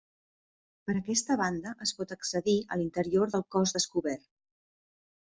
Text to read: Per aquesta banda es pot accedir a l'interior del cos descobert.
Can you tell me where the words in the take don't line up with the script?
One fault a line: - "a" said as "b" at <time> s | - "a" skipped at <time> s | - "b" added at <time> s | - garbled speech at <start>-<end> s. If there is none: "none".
none